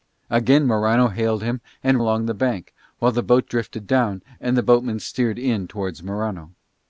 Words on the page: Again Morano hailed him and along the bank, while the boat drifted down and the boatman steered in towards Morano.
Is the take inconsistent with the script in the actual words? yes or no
no